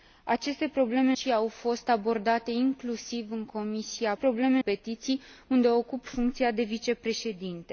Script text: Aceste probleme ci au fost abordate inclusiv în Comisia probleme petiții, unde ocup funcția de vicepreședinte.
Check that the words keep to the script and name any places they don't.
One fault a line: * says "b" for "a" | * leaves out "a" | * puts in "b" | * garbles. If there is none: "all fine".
all fine